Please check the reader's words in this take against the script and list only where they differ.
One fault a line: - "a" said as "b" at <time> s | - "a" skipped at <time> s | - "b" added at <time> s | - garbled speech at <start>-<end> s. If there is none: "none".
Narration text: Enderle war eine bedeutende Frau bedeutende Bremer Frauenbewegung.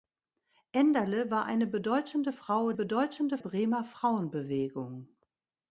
none